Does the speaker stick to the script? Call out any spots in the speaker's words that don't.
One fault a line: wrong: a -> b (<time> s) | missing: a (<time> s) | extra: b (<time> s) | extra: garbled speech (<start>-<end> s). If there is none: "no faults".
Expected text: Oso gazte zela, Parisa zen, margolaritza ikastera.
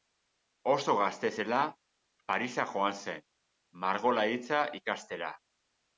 extra: joan (2.7 s)